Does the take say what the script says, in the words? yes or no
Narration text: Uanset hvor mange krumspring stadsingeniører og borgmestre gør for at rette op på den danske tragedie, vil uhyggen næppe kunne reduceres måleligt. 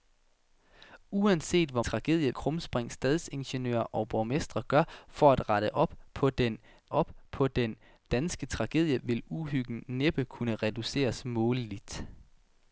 no